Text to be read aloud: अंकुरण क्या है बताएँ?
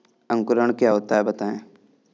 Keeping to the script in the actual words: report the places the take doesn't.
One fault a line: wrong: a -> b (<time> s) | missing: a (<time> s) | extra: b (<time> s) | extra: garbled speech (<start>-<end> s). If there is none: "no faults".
extra: होता (0.9 s)